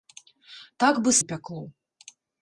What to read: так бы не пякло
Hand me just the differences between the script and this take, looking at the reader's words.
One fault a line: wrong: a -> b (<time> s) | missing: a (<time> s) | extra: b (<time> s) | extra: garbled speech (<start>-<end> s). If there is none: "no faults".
no faults